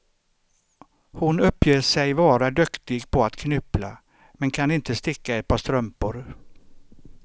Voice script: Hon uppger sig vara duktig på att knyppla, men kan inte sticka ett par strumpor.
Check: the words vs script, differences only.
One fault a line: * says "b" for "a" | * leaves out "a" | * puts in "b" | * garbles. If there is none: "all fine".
all fine